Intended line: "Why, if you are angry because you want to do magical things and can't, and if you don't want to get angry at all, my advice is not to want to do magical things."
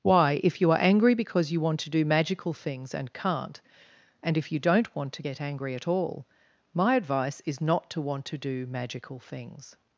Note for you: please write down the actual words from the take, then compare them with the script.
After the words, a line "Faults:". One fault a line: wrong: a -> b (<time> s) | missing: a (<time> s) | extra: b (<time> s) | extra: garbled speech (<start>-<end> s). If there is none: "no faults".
"Why, if you are angry because you want to do magical things and can't, and if you don't want to get angry at all, my advice is not to want to do magical things."
Faults:
no faults